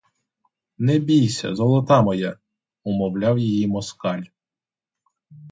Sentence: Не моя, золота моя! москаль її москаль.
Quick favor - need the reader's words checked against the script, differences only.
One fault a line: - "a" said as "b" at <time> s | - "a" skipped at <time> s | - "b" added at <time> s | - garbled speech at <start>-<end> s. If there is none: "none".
- "моя" said as "бійся" at 1.0 s
- "москаль" said as "умовляв" at 2.8 s